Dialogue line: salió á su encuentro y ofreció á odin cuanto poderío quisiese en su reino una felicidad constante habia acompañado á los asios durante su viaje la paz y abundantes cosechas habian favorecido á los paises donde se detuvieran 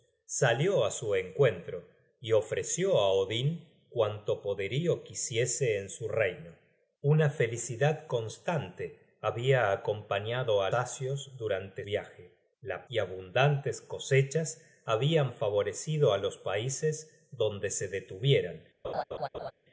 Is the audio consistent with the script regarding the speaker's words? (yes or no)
no